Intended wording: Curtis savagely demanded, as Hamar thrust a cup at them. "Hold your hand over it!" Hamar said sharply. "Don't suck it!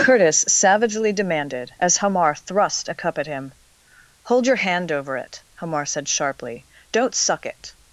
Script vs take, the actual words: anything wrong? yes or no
yes